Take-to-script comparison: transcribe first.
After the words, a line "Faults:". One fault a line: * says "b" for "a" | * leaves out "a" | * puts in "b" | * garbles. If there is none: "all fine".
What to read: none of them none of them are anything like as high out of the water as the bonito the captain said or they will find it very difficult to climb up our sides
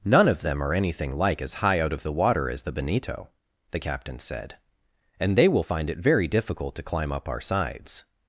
none of them are anything like as high out of the water as the bonito the captain said and they will find it very difficult to climb up our sides
Faults:
* leaves out "none of them"
* says "and" for "or"